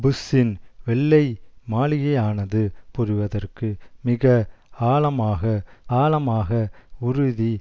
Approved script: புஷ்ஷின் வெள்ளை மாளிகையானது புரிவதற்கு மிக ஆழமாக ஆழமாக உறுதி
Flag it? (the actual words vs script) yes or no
no